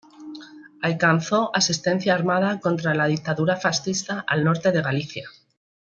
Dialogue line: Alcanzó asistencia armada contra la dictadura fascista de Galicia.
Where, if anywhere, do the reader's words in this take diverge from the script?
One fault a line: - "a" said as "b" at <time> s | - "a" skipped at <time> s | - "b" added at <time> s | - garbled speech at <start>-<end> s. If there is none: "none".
- "al norte" added at 4.3 s